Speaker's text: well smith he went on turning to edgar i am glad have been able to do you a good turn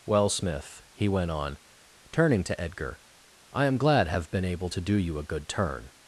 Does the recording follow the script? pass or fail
pass